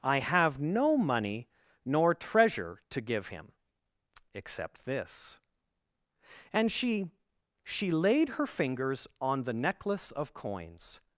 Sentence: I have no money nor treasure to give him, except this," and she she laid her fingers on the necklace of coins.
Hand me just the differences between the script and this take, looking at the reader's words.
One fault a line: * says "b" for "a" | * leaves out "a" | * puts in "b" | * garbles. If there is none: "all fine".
all fine